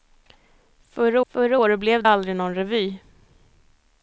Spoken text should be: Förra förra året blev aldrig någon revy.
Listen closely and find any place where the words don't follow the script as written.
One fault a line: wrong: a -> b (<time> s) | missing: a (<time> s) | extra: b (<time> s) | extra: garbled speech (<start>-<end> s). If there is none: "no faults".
no faults